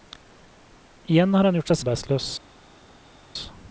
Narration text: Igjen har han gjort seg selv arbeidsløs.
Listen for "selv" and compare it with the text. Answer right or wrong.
wrong